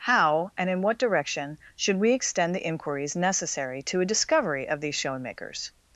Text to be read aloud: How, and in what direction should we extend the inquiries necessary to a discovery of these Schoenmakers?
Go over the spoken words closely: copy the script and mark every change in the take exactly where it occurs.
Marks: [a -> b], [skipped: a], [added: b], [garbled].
How, and in what direction should we extend the inquiries necessary to a discovery of these Schoenmakers?